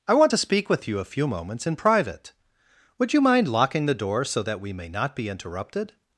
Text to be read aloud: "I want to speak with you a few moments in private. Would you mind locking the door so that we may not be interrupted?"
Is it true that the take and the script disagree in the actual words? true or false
false